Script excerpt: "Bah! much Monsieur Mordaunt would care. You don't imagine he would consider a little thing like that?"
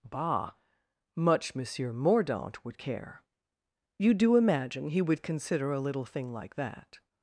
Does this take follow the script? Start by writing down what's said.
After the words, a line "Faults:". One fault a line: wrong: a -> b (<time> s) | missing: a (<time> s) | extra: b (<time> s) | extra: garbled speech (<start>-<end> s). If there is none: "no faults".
"Bah! much Monsieur Mordaunt would care. You do imagine he would consider a little thing like that?"
Faults:
wrong: don't -> do (4.1 s)